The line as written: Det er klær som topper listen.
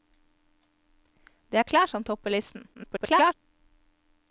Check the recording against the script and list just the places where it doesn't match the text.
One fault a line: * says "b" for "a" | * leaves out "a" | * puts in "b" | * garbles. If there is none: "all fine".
* garbles